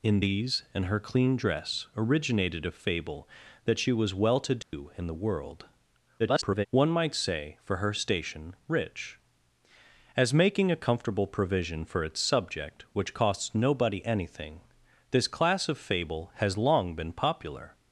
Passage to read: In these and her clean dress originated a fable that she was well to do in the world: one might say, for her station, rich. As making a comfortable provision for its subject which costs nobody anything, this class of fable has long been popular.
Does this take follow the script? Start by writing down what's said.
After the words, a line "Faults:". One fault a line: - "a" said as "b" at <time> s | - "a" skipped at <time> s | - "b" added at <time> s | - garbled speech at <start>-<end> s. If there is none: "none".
In these and her clean dress originated a fable that she was well to do in the world: [garbled] one might say, for her station, rich. As making a comfortable provision for its subject which costs nobody anything, this class of fable has long been popular.
Faults:
- garbled speech at 6.2-6.7 s